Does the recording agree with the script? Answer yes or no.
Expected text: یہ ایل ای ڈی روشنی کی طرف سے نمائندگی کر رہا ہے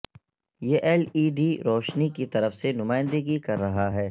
yes